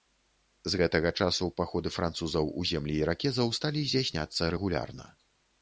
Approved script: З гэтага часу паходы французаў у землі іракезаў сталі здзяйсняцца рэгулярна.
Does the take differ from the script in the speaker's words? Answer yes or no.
no